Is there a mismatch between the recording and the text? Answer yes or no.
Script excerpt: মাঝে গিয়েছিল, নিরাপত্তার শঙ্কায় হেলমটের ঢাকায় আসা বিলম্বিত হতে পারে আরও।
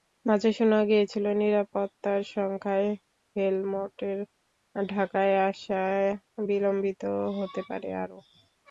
yes